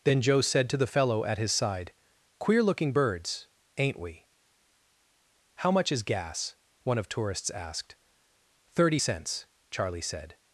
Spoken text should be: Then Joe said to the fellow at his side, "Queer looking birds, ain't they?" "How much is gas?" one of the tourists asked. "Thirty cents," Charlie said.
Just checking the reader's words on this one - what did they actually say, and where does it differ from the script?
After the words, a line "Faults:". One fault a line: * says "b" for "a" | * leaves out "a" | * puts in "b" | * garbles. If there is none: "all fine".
Then Joe said to the fellow at his side, "Queer looking birds, ain't we?" "How much is gas?" one of tourists asked. "Thirty cents," Charlie said.
Faults:
* says "we" for "they"
* leaves out "the"